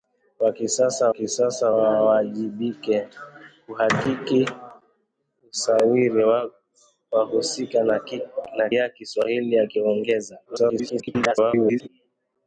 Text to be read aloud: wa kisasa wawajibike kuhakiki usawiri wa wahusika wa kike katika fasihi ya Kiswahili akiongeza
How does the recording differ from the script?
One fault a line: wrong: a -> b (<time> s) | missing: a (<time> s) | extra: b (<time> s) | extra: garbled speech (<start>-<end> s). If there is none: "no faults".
extra: kisasa (1.1 s)
missing: kike katika fasihi (8.7 s)
extra: garbled speech (10.5-11.9 s)